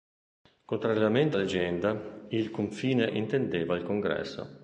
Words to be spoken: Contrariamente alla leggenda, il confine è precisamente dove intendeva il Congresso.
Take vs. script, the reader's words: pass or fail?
fail